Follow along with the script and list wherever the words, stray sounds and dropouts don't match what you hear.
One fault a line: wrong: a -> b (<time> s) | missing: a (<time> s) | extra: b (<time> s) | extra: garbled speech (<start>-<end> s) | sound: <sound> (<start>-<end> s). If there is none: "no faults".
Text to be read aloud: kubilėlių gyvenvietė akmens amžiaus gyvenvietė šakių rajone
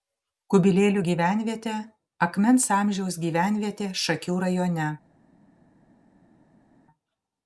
no faults